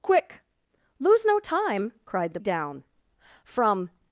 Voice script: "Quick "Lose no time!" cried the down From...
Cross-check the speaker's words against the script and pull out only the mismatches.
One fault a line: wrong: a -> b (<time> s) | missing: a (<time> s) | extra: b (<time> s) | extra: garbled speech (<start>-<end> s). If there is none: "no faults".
no faults